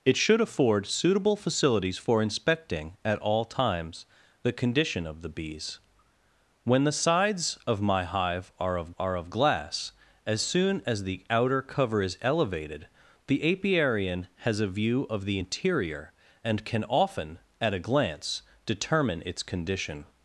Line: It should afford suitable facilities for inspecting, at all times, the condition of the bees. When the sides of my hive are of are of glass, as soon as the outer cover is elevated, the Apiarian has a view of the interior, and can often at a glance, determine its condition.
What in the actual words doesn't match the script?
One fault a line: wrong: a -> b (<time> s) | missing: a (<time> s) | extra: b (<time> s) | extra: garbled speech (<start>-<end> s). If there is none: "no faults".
no faults